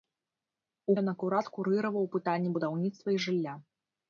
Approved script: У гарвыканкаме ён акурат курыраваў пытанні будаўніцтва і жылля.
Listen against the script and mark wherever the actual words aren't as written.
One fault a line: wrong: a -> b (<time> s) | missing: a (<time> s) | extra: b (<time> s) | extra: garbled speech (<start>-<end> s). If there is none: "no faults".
missing: гарвыканкаме (0.9 s)